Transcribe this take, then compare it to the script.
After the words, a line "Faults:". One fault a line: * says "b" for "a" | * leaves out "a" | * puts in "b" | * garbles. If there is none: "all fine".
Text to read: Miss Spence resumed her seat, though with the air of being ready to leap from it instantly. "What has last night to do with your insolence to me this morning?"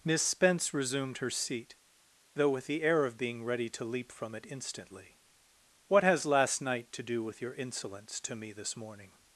Miss Spence resumed her seat, though with the air of being ready to leap from it instantly. "What has last night to do with your insolence to me this morning?"
Faults:
all fine